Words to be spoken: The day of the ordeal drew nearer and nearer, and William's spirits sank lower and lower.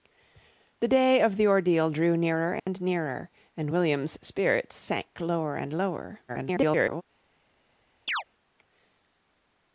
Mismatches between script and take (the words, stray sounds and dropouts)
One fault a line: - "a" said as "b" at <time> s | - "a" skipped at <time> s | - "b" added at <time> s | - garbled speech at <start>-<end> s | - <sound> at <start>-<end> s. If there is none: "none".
- dropout at 2.6-2.7 s
- garbled speech at 6.3-7.0 s
- chirp at 8.1-8.2 s